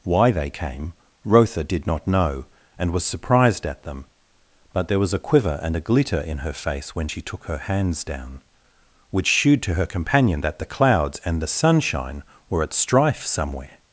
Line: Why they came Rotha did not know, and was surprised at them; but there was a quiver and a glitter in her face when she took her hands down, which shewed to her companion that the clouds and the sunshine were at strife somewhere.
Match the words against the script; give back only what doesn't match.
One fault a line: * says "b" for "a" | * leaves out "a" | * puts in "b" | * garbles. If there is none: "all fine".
all fine